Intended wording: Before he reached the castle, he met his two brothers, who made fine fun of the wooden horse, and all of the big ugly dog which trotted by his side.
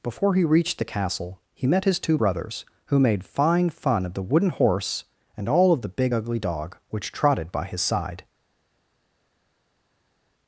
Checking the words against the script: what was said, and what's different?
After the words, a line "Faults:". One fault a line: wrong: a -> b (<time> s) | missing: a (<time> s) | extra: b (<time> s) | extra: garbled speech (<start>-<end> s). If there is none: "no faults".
Before he reached the castle, he met his two brothers, who made fine fun of the wooden horse, and all of the big ugly dog which trotted by his side.
Faults:
no faults